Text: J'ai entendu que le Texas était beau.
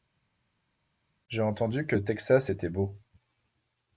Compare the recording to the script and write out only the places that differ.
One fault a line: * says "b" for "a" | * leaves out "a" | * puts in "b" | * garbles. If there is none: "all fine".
all fine